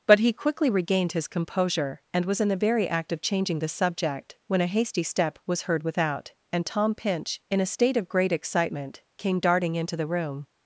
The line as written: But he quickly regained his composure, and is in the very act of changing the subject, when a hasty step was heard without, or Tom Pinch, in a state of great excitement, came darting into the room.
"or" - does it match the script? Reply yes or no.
no